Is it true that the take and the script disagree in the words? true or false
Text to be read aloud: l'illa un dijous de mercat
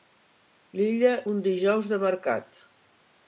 false